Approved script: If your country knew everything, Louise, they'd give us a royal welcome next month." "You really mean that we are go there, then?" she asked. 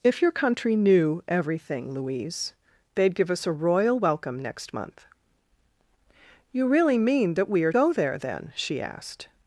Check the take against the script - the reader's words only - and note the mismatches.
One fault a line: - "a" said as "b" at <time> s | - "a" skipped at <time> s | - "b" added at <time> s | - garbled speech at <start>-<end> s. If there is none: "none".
none